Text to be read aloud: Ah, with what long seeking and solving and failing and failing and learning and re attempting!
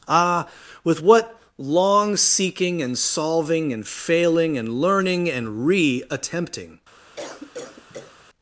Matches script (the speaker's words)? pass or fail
fail